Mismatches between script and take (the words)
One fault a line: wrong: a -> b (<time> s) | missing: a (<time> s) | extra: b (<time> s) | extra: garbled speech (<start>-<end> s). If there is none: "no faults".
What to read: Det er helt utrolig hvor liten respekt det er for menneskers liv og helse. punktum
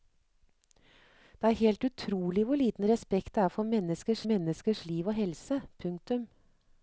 extra: menneskers (4.3 s)